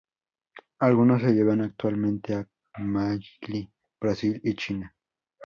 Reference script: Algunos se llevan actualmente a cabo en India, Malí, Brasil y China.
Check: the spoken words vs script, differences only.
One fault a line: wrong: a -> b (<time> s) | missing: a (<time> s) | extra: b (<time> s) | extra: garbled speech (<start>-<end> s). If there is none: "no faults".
missing: cabo en India (2.4 s)